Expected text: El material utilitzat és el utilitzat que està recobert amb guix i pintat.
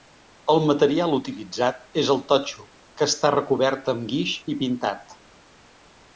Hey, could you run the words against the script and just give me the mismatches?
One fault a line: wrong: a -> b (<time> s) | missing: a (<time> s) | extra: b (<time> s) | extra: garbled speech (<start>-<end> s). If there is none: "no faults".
wrong: utilitzat -> totxo (2.3 s)